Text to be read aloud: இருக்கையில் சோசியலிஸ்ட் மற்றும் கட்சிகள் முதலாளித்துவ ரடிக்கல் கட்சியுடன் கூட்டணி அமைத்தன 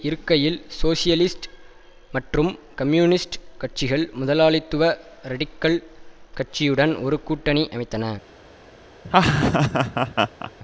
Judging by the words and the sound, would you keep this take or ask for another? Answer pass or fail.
fail